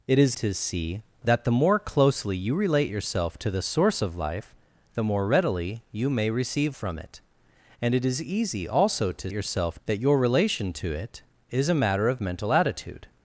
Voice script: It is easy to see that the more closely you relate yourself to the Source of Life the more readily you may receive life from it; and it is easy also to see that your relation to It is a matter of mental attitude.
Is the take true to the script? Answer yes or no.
no